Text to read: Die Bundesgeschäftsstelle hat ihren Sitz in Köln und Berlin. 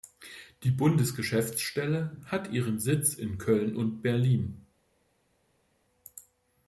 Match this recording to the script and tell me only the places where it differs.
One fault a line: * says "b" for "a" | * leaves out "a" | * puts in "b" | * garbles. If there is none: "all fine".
all fine